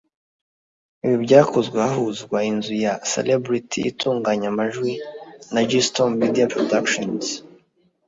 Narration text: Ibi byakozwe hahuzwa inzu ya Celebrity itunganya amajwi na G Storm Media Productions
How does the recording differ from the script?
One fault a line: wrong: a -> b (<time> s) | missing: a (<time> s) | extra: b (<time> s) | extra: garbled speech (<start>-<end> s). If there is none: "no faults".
no faults